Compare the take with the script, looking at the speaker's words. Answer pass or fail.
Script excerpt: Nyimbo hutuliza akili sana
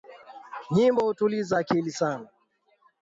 pass